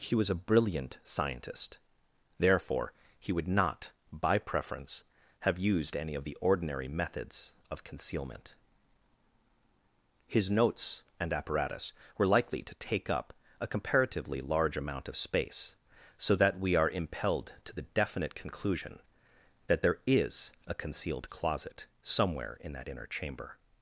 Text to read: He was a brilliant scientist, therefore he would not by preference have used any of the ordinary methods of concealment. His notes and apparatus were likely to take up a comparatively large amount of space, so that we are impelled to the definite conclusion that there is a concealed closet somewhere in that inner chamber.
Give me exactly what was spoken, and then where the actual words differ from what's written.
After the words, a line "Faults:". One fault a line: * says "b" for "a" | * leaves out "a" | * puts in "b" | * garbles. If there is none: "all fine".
He was a brilliant scientist, therefore he would not by preference have used any of the ordinary methods of concealment. His notes and apparatus were likely to take up a comparatively large amount of space, so that we are impelled to the definite conclusion that there is a concealed closet somewhere in that inner chamber.
Faults:
all fine